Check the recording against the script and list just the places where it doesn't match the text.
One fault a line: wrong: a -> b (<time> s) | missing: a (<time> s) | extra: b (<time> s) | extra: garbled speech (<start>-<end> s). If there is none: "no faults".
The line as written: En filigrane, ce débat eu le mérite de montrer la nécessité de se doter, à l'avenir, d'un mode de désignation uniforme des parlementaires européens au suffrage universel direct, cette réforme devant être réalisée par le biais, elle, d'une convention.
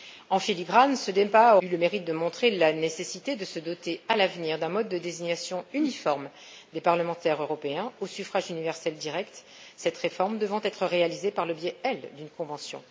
no faults